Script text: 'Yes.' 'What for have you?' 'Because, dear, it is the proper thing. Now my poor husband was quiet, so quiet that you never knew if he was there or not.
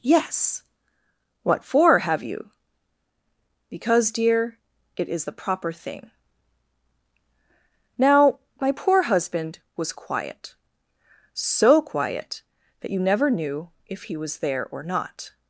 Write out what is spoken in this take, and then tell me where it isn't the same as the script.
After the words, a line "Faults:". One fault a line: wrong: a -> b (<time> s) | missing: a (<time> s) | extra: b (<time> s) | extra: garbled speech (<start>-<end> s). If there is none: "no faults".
'Yes.' 'What for have you?' 'Because, dear, it is the proper thing. Now my poor husband was quiet, so quiet that you never knew if he was there or not.
Faults:
no faults